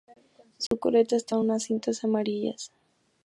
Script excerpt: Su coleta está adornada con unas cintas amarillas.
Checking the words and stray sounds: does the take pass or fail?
fail